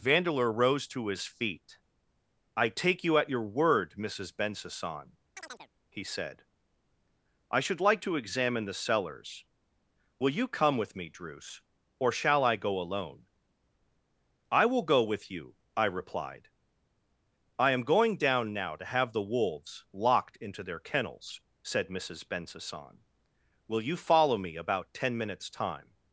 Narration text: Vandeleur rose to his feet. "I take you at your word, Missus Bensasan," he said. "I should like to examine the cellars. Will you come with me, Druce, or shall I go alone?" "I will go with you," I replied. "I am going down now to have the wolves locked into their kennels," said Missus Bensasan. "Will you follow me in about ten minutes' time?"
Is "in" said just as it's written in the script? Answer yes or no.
no